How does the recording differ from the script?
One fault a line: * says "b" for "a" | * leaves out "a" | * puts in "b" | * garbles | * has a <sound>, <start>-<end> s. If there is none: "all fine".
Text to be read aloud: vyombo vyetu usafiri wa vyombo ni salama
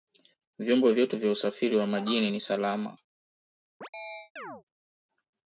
* puts in "vya"
* says "majini" for "vyombo"
* has a chirp, 3.8-4.6 s